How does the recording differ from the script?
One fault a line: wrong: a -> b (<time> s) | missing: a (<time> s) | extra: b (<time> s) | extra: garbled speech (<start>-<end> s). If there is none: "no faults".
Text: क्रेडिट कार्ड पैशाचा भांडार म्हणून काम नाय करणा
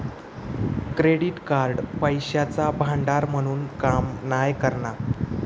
no faults